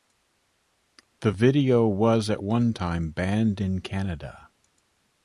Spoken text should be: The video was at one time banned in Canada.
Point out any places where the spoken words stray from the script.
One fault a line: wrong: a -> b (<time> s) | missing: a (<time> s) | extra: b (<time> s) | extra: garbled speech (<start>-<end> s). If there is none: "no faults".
no faults